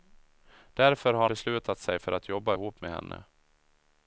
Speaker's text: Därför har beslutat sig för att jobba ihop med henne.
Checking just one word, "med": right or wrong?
right